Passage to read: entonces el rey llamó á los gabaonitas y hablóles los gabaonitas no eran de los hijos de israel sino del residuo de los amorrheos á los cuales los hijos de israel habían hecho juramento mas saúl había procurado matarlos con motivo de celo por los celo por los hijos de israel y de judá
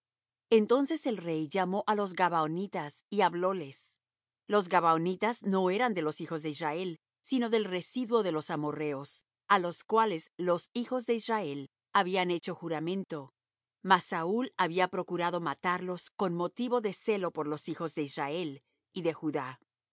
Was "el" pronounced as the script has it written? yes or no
yes